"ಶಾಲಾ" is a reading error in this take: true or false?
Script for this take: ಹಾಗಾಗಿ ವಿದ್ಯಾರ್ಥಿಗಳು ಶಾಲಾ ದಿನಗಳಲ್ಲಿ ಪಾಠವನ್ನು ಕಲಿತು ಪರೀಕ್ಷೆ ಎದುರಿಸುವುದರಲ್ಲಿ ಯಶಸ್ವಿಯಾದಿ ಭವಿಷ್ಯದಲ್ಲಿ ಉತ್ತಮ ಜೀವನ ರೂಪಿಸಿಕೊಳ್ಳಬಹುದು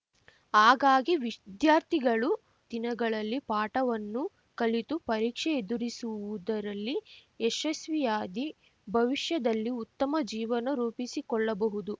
true